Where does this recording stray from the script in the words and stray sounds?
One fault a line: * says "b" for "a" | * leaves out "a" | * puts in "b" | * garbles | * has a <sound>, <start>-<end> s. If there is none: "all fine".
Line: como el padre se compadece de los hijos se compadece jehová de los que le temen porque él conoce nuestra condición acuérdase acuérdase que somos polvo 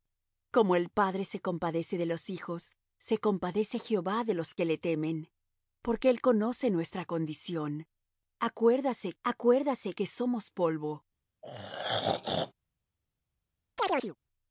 * has a throat clearing, 11.4-12.5 s
* has a chirp, 13.8-14.2 s